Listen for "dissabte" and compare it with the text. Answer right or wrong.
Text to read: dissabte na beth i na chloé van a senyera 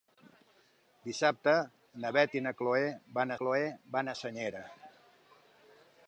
right